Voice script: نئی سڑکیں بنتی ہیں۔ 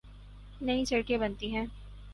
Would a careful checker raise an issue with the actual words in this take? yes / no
no